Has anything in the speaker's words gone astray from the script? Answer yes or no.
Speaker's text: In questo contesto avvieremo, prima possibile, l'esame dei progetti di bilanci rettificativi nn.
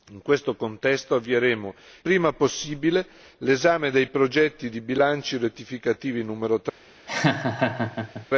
no